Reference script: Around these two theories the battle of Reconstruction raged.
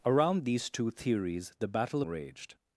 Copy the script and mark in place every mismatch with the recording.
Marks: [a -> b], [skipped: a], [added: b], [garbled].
Around these two theories the battle [skipped: of Reconstruction] raged.